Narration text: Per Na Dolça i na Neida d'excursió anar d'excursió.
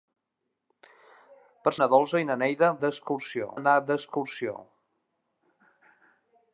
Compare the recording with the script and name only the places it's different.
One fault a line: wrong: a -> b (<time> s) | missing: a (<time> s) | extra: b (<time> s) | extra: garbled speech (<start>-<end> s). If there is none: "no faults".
no faults